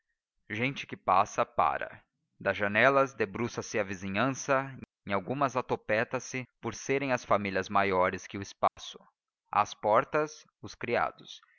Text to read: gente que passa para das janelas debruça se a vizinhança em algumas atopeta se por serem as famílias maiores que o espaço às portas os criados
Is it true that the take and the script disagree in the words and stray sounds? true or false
true